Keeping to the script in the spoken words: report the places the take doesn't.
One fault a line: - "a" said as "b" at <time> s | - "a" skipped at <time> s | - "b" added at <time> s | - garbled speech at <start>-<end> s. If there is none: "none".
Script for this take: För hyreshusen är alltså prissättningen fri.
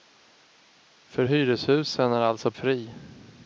- "prissättningen" skipped at 2.5 s